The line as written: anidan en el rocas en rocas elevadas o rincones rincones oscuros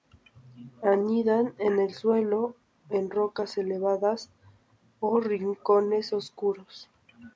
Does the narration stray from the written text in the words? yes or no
yes